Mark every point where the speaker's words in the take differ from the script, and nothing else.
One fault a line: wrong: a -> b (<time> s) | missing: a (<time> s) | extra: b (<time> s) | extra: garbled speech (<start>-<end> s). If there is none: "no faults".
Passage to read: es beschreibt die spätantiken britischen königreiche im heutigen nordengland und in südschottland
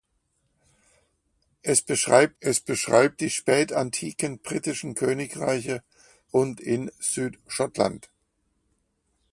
extra: es beschreibt (2.4 s)
missing: im heutigen nordengland (5.8 s)